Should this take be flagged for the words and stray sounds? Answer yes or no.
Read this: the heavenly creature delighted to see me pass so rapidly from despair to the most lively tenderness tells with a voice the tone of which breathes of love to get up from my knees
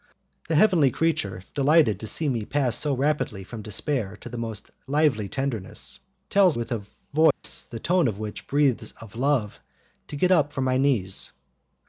yes